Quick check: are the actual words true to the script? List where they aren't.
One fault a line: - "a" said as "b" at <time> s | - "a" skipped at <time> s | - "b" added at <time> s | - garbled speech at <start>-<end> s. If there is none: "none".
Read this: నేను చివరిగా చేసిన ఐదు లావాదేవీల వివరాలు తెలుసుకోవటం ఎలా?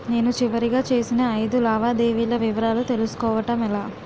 none